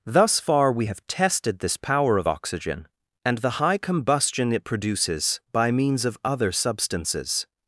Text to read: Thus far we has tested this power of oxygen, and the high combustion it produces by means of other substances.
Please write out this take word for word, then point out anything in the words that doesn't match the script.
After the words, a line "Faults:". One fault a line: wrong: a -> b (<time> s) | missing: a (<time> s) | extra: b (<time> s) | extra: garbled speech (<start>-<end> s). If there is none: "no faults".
Thus far we have tested this power of oxygen, and the high combustion it produces by means of other substances.
Faults:
wrong: has -> have (0.8 s)